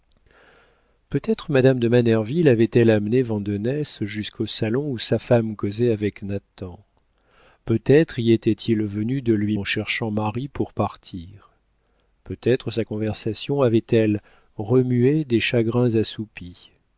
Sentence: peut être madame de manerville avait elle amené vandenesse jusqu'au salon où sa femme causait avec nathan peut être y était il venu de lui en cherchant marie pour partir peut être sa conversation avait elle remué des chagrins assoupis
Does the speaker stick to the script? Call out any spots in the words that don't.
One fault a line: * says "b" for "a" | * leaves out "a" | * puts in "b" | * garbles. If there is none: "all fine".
all fine